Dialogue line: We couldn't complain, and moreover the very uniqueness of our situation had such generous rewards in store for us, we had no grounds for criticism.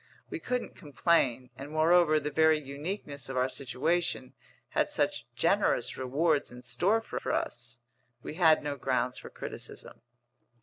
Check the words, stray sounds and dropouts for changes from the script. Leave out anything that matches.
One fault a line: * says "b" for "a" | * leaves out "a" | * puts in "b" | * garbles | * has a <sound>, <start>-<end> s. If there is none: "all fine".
* puts in "for"